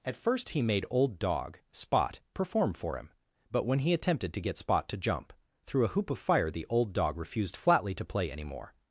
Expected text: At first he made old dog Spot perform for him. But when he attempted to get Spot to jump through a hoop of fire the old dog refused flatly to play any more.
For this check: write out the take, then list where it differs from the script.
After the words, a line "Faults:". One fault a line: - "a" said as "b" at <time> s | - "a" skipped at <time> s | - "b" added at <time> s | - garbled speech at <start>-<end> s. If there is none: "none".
At first he made old dog Spot perform for him. But when he attempted to get Spot to jump through a hoop of fire the old dog refused flatly to play any more.
Faults:
none